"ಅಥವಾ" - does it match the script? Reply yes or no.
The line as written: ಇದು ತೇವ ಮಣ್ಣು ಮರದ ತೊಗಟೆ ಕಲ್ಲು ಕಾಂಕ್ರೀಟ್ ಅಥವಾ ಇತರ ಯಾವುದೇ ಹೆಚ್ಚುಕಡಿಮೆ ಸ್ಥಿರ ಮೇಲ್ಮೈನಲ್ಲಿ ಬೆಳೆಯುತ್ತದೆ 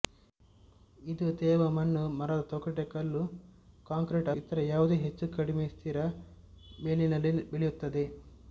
no